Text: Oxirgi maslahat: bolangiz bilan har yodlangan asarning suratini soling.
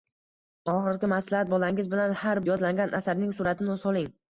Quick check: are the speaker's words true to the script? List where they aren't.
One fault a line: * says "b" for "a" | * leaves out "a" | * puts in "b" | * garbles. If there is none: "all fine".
all fine